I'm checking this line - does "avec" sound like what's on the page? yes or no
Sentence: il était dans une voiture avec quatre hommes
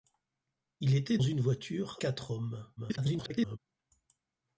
no